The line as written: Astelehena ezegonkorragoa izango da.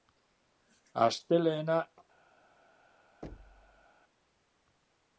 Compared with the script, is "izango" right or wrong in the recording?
wrong